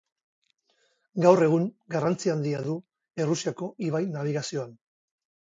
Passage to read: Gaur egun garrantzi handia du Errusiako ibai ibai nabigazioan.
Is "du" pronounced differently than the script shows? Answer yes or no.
no